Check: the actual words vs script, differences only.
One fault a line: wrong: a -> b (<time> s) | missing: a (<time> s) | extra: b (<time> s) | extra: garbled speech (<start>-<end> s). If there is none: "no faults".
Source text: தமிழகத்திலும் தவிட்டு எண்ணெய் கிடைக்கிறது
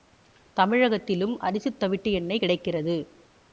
extra: அரிசித் (1.4 s)